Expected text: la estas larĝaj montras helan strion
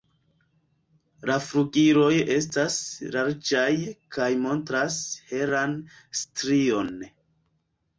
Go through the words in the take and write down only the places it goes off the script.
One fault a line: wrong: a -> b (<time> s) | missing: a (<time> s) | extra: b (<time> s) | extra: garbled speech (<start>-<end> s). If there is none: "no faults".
extra: flugiloj (1.5 s)
extra: kaj (4.2 s)